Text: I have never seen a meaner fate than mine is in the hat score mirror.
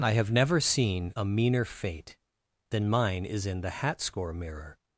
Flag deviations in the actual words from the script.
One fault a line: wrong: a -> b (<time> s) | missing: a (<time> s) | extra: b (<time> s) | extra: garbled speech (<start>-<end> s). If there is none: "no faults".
no faults